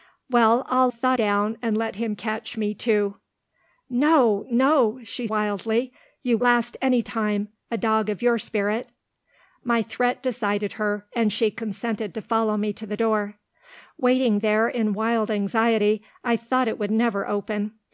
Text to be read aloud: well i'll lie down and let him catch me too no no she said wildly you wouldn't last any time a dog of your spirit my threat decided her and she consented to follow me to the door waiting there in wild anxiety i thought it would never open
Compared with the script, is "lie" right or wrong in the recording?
wrong